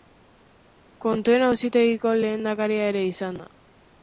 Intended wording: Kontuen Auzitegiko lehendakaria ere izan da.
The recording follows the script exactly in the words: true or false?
true